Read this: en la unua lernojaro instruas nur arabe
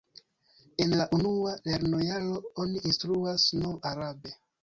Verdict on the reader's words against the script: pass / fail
fail